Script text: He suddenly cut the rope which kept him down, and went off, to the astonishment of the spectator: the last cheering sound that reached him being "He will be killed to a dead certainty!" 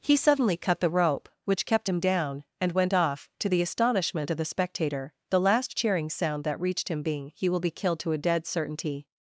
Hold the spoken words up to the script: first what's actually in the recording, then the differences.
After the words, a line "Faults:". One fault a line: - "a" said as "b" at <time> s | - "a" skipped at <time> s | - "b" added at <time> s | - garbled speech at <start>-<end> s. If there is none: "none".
He suddenly cut the rope which kept him down, and went off, to the astonishment of the spectator: the last cheering sound that reached him being "He will be killed to a dead certainty!"
Faults:
none